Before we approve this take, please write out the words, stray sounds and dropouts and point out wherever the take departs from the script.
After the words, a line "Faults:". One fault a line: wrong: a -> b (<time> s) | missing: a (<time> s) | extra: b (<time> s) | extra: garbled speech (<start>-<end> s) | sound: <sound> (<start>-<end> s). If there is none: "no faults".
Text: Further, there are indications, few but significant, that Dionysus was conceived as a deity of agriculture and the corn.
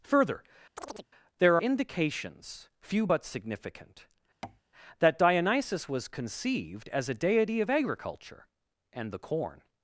Further, there indications, few but significant, that Dionysus was conceived as a deity of agriculture and the corn.
Faults:
sound: chirp (0.8-1.1 s)
missing: are (1.6 s)
sound: tap (4.4-4.6 s)